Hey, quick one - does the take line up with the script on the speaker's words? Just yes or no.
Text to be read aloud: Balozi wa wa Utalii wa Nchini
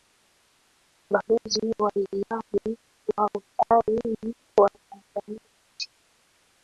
no